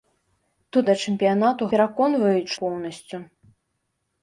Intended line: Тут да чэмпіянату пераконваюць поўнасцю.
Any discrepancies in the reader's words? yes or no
no